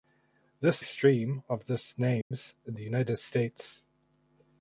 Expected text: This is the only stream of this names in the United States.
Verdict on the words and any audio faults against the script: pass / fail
fail